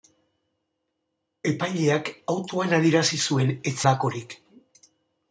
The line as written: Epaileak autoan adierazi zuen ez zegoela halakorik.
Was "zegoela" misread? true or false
true